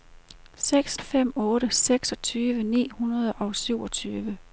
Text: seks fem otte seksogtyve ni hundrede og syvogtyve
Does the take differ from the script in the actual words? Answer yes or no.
no